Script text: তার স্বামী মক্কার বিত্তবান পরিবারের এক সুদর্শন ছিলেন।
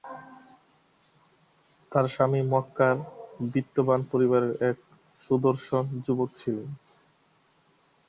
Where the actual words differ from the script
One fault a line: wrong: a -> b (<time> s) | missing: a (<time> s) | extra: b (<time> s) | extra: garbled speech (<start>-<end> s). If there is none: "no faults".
extra: যুবক (6.0 s)